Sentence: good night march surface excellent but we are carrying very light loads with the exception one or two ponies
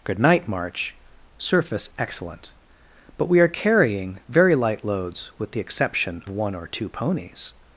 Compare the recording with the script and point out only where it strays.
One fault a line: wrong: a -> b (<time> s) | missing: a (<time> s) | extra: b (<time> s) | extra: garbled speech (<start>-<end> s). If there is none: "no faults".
no faults